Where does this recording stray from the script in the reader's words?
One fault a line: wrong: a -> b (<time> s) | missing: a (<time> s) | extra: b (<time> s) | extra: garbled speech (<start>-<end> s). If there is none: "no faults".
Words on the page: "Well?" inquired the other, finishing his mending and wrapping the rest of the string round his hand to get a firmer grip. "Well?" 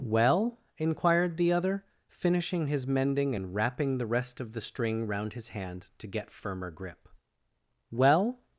missing: a (6.3 s)